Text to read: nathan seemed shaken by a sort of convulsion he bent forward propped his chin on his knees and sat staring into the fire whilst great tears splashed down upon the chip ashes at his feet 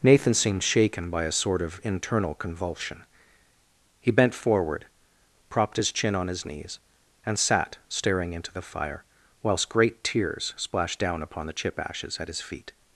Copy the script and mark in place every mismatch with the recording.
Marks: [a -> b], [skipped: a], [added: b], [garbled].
nathan seemed shaken by a sort of [added: internal] convulsion he bent forward propped his chin on his knees and sat staring into the fire whilst great tears splashed down upon the chip ashes at his feet